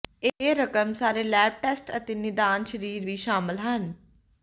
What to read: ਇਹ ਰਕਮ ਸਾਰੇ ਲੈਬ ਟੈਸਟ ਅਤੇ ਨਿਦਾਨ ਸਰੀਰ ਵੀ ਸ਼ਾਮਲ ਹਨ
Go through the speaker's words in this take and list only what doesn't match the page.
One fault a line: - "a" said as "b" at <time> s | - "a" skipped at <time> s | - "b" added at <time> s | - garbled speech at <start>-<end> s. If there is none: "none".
none